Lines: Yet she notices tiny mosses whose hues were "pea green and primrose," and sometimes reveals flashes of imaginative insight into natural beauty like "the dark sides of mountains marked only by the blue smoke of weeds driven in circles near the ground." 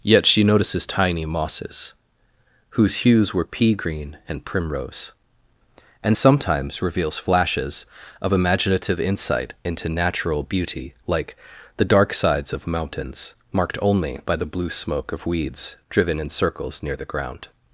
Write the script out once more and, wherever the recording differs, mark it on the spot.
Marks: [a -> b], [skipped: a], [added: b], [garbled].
Yet she notices tiny mosses whose hues were "pea green and primrose," and sometimes reveals flashes of imaginative insight into natural beauty like "the dark sides of mountains marked only by the blue smoke of weeds driven in circles near the ground."